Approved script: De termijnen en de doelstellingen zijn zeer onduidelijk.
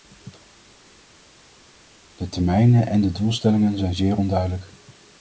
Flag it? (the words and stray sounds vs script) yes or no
no